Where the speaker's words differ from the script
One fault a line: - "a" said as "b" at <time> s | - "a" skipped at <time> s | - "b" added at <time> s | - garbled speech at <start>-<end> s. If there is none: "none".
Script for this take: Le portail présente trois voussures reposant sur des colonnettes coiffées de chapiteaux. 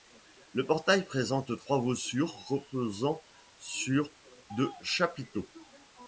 - "des colonnettes coiffées" skipped at 4.1 s